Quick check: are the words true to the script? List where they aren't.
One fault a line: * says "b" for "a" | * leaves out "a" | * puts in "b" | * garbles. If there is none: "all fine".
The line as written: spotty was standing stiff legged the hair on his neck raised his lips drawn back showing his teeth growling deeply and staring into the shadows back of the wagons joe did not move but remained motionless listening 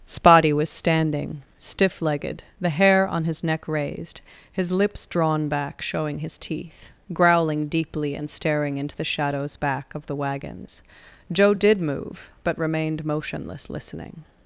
* leaves out "not"